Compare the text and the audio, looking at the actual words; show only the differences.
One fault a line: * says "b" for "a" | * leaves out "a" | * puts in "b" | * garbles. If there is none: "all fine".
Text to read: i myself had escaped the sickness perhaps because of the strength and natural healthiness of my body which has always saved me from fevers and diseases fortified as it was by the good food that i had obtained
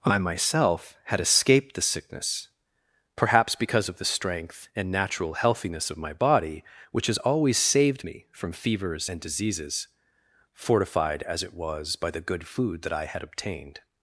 all fine